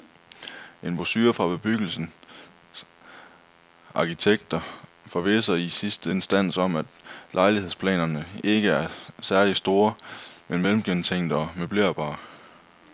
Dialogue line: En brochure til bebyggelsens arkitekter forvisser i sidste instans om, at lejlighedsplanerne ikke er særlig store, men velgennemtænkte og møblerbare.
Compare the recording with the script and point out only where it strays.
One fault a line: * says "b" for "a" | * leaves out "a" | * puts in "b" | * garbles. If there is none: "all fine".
* says "fra" for "til"